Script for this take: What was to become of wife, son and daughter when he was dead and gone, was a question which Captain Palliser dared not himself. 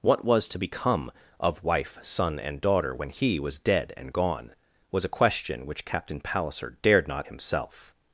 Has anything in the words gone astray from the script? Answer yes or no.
no